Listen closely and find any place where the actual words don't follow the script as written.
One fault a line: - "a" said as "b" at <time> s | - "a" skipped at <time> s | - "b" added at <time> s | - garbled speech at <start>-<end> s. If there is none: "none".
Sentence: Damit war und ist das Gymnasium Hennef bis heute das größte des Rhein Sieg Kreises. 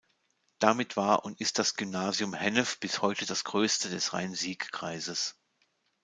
none